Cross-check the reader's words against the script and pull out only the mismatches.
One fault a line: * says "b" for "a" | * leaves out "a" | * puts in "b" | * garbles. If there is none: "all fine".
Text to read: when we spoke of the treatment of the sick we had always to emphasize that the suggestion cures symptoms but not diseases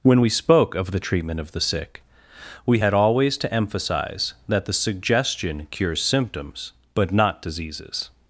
all fine